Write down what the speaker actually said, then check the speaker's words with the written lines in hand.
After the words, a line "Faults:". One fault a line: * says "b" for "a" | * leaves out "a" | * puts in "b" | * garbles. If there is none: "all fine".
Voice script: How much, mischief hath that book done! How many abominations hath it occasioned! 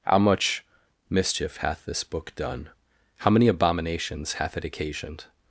How much, mischief hath this book done! How many abominations hath it occasioned!
Faults:
* says "this" for "that"